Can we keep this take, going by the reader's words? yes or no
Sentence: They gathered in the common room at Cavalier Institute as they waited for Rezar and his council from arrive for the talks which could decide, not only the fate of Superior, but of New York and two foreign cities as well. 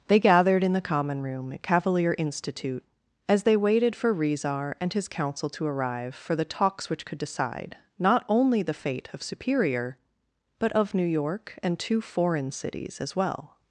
no